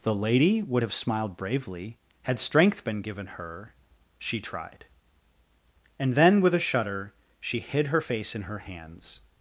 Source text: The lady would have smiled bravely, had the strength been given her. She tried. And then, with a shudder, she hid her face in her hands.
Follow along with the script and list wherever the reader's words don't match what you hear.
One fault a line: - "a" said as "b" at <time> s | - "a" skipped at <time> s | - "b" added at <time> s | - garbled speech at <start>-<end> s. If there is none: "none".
- "the" skipped at 2.4 s